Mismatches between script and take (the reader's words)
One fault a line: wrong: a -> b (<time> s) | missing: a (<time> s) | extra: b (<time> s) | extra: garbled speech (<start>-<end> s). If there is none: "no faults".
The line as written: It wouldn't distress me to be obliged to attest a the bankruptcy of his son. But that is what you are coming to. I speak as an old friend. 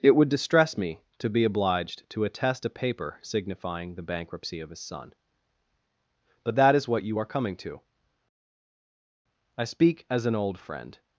wrong: wouldn't -> would (0.1 s)
extra: paper signifying (2.7 s)